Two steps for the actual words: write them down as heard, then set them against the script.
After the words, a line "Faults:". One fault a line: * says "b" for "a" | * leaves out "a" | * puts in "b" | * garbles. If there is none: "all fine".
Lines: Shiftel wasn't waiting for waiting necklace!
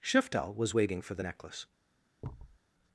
Shiftel was waiting for the necklace!
Faults:
* says "was" for "wasn't"
* says "the" for "waiting"